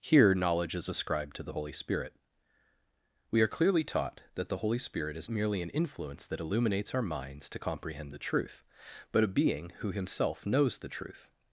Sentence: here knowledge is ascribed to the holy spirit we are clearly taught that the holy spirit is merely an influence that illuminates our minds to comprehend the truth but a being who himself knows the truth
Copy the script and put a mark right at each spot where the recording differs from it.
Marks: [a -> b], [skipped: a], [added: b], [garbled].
here knowledge is ascribed to the holy spirit we are clearly taught that the holy spirit is merely an influence that illuminates our minds to comprehend the truth but a being who himself knows the truth